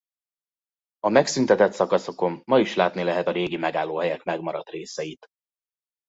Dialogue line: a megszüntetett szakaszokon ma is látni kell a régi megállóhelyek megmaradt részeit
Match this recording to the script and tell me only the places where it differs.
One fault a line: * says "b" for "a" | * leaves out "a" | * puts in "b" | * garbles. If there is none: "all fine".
* says "lehet" for "kell"